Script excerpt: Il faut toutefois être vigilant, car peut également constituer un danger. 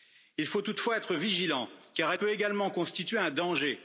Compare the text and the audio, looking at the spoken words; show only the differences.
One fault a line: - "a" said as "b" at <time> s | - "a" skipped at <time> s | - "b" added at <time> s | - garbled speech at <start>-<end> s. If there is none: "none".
none